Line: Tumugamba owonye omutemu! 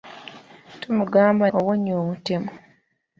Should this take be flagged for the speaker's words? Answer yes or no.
no